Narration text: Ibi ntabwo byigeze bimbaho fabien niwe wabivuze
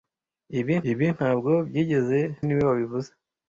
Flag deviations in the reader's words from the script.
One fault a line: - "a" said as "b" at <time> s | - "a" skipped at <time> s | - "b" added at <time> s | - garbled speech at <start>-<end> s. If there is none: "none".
- "ibi" added at 0.9 s
- "bimbaho fabien" skipped at 2.2 s